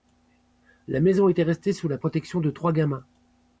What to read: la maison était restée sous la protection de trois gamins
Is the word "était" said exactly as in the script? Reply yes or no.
yes